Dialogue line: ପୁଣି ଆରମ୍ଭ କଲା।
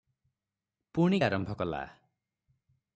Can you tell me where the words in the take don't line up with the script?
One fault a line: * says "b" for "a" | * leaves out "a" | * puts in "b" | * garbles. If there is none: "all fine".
all fine